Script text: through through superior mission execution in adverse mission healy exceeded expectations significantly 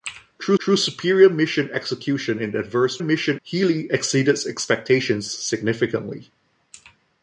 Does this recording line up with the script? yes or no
yes